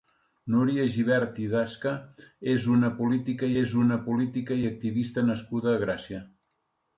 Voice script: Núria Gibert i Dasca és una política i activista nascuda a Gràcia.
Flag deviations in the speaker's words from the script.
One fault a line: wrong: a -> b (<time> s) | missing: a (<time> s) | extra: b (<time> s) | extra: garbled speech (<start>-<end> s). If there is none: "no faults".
extra: és una política (3.6 s)